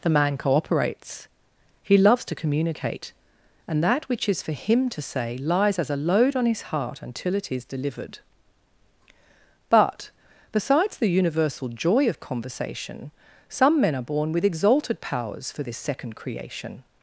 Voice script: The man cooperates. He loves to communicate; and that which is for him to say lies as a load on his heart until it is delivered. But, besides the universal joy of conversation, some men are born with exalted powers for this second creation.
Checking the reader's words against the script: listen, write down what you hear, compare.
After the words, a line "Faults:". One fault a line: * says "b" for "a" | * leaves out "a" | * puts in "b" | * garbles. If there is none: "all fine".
The man cooperates. He loves to communicate; and that which is for him to say lies as a load on his heart until it is delivered. But, besides the universal joy of conversation, some men are born with exalted powers for this second creation.
Faults:
all fine